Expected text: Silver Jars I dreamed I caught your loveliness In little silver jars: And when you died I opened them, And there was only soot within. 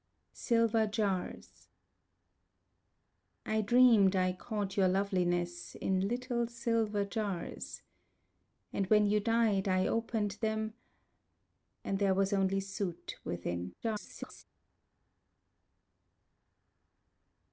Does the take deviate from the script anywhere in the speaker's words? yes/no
yes